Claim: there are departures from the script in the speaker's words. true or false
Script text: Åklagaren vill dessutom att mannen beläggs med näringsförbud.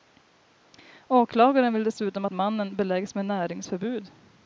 false